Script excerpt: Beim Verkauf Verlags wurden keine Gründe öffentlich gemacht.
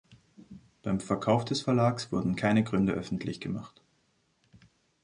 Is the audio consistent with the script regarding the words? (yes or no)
no